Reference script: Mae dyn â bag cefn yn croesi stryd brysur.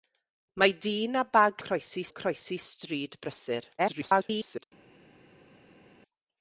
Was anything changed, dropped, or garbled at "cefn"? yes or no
yes